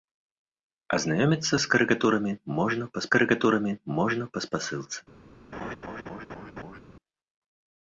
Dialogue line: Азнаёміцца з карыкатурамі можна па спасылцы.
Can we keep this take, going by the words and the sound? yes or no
no